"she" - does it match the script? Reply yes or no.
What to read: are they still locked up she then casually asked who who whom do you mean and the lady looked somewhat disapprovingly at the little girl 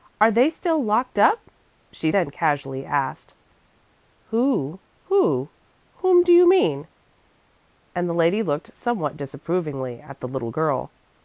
yes